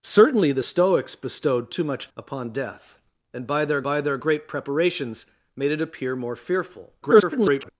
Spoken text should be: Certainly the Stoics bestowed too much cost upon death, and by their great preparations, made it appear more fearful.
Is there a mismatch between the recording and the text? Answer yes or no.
yes